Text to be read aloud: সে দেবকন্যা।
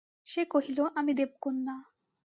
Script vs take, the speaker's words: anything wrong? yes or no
yes